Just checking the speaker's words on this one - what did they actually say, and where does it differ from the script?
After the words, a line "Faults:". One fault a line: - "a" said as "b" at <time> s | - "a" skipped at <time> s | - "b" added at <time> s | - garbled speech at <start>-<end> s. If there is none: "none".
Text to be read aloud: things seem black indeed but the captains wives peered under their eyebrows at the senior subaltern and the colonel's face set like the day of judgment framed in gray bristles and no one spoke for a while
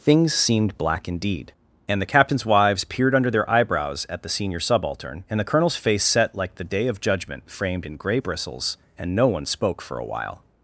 things seemed black indeed and the captains wives peered under their eyebrows at the senior subaltern and the colonel's face set like the day of judgment framed in gray bristles and no one spoke for a while
Faults:
- "seem" said as "seemed" at 0.3 s
- "but" said as "and" at 1.9 s